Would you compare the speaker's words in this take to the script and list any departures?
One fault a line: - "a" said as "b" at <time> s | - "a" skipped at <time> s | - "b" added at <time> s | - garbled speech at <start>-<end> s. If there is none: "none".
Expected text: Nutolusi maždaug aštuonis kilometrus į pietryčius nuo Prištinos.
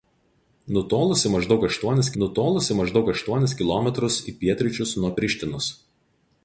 - "nutolusi maždaug aštuonis" added at 2.2 s